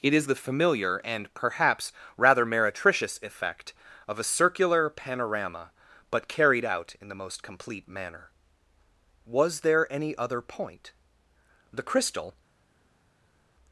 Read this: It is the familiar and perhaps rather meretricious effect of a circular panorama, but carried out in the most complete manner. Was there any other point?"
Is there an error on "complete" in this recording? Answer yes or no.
no